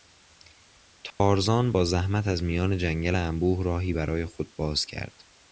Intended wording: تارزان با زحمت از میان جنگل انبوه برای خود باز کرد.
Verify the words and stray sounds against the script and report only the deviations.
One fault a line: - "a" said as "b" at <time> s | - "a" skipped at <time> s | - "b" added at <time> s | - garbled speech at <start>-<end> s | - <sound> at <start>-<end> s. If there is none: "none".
- dropout at 1.1-1.2 s
- "راهی" added at 3.6 s